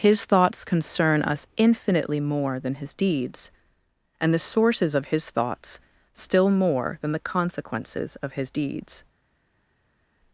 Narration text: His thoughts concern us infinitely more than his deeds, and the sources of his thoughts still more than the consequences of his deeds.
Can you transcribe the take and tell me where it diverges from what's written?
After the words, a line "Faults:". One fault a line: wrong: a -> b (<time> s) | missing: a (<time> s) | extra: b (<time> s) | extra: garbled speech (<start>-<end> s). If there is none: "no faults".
His thoughts concern us infinitely more than his deeds, and the sources of his thoughts still more than the consequences of his deeds.
Faults:
no faults